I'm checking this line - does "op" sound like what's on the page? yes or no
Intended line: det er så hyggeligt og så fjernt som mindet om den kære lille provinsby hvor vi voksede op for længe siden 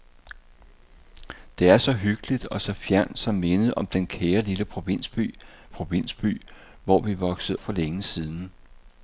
no